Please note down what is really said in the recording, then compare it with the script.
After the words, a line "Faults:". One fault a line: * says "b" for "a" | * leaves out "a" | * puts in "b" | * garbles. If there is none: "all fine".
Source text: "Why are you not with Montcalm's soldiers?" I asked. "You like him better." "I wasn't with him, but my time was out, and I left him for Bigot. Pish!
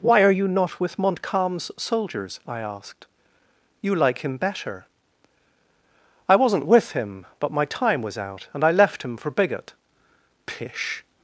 "Why are you not with Montcalm's soldiers?" I asked. "You like him better." "I wasn't with him, but my time was out, and I left him for Bigot. Pish!
Faults:
all fine